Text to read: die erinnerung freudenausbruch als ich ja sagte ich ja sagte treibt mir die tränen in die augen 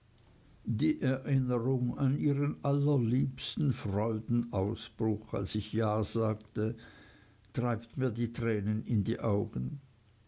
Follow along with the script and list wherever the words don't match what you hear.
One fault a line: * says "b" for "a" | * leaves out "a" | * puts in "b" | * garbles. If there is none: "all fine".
* says "an ihren allerliebsten freudenausbruch als" for "freudenausbruch als ich ja sagte"